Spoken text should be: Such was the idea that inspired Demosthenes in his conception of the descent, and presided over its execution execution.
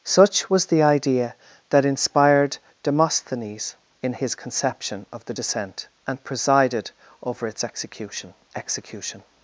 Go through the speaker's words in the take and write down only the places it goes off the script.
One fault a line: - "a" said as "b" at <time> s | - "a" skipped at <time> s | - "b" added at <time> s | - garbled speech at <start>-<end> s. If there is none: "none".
none